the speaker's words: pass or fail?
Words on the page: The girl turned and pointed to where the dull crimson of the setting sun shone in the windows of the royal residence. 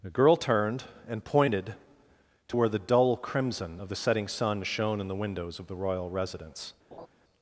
pass